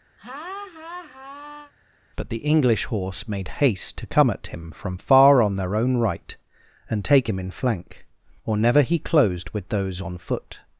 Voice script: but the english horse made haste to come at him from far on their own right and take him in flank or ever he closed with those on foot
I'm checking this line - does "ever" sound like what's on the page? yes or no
no